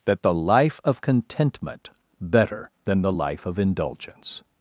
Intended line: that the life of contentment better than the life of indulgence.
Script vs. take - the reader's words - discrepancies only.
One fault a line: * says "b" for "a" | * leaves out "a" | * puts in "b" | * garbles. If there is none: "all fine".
all fine